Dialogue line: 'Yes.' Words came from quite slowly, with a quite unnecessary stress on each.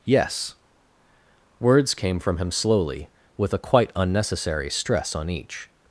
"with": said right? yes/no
yes